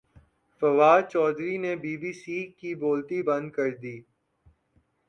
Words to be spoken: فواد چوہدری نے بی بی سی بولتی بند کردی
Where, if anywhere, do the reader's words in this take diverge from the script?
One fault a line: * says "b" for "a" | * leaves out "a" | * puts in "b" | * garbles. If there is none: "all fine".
* puts in "کی"